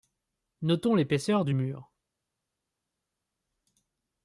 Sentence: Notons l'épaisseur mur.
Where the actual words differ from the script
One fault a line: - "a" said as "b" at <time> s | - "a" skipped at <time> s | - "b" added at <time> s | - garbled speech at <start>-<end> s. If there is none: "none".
- "du" added at 1.4 s